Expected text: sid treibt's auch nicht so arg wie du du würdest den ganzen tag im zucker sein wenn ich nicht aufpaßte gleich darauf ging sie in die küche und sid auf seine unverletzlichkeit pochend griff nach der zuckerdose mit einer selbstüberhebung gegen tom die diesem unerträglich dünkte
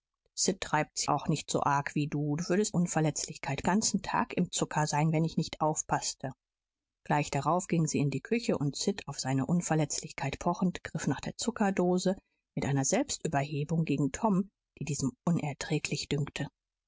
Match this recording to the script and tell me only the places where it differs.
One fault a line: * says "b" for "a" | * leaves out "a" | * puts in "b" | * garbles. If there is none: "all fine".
* says "unverletzlichkeit" for "den"